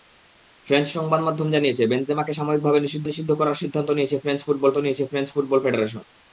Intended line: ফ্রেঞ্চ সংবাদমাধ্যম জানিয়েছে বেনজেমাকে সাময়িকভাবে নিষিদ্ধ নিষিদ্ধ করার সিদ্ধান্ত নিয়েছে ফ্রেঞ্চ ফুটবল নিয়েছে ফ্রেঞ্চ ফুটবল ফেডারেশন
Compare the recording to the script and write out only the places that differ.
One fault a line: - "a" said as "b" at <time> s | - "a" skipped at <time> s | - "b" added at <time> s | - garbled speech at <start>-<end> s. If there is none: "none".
none